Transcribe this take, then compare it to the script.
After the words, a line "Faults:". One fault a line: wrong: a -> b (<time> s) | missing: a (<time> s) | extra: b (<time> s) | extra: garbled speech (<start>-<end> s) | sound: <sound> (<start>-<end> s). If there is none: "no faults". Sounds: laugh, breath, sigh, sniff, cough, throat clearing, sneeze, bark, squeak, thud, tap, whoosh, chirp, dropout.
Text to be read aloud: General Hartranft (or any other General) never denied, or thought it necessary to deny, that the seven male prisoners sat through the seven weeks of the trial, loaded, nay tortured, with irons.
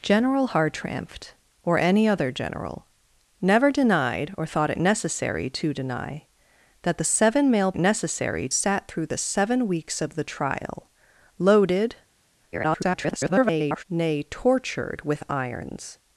General Hartranft (or any other General) never denied, or thought it necessary to deny, that the seven male necessary sat through the seven weeks of the trial, loaded, [garbled] nay tortured, with irons.
Faults:
wrong: prisoners -> necessary (7.8 s)
extra: garbled speech (12.5-13.8 s)